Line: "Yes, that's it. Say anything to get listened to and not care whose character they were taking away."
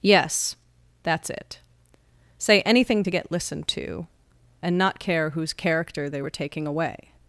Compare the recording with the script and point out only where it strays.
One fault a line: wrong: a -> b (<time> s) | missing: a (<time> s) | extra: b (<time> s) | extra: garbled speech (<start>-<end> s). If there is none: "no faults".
no faults